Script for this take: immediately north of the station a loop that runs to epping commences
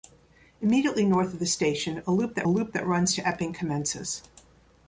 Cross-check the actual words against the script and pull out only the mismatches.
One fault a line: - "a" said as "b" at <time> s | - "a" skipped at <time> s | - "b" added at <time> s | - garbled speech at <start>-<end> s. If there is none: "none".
- "loop that" added at 2.5 s